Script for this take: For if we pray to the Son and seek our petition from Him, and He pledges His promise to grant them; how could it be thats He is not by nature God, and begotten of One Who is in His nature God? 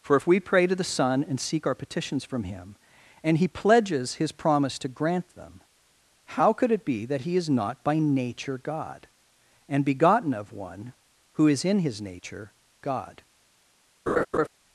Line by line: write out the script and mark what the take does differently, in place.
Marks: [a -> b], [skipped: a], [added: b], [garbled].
For if we pray to the Son and seek our [petition -> petitions] from Him, and He pledges His promise to grant them; how could it be [thats -> that] He is not by nature God, and begotten of One Who is in His nature God?